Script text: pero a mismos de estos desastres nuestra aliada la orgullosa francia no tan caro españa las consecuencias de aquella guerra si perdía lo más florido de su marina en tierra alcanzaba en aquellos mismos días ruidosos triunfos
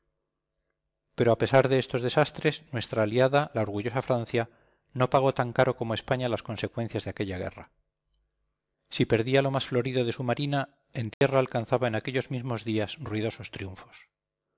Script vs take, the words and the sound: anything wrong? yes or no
yes